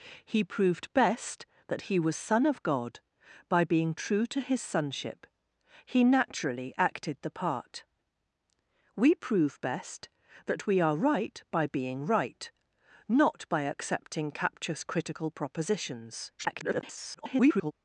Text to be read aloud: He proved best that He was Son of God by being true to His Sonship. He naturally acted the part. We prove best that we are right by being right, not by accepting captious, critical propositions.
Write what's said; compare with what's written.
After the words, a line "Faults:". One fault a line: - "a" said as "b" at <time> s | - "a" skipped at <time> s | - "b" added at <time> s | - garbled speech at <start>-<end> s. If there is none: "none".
He proved best that He was Son of God by being true to His Sonship. He naturally acted the part. We prove best that we are right by being right, not by accepting captious, critical propositions. [garbled]
Faults:
- garbled speech at 16.4-17.7 s